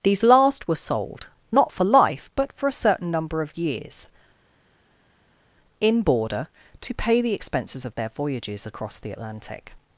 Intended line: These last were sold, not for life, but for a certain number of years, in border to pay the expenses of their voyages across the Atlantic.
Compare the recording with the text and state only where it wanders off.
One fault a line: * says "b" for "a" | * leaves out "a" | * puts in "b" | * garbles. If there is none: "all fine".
all fine